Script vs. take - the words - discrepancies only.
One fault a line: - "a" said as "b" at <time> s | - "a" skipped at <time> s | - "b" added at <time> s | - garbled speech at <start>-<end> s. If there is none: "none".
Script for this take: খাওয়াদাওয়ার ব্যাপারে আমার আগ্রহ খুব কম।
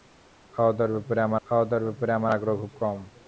- "খাওয়াদাওয়ার ব্যাপারে আমার" added at 1.5 s